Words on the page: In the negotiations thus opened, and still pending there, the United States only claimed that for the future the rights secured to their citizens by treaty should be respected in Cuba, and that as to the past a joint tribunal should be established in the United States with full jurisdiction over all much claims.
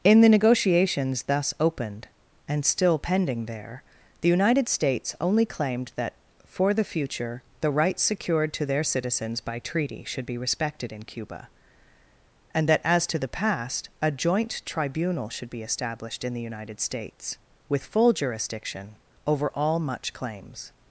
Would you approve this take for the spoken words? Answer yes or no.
yes